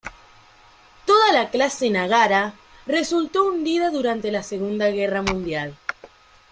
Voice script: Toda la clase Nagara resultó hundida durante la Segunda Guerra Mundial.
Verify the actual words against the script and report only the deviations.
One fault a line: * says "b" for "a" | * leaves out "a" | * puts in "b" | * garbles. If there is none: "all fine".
all fine